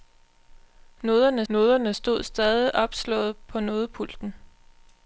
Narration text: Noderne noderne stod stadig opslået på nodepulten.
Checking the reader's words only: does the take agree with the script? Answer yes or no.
yes